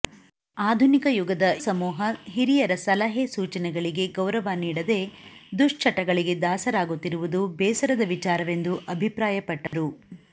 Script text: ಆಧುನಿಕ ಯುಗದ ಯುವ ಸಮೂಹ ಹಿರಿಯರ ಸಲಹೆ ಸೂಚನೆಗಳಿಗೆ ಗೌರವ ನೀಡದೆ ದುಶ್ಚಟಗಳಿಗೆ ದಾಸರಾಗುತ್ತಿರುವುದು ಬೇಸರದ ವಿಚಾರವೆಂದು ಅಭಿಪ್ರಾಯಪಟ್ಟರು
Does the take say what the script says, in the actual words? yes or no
no